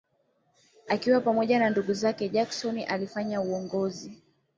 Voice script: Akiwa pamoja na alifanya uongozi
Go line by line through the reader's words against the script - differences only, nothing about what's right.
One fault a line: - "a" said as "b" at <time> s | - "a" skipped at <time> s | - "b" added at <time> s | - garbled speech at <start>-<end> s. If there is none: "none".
- "ndugu zake Jackson" added at 1.7 s